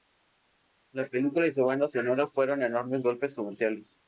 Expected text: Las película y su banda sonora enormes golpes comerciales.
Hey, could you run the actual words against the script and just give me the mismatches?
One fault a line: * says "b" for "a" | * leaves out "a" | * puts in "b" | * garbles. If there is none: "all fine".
* says "La" for "Las"
* puts in "fueron"